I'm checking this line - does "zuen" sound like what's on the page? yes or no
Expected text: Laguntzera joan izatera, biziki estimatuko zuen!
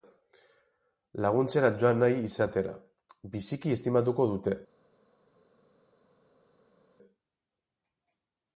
no